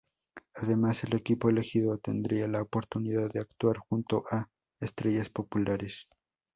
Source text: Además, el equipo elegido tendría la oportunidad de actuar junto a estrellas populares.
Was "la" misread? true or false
false